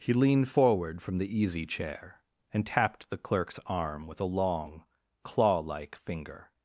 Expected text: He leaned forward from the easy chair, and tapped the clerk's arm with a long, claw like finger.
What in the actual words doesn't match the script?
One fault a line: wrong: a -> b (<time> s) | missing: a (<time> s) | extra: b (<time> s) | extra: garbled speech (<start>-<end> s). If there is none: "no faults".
no faults